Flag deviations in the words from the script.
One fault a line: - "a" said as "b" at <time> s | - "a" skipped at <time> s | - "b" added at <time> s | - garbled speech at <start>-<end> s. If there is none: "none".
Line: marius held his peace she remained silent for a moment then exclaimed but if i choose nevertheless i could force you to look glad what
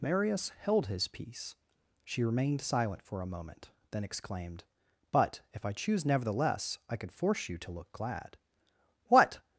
none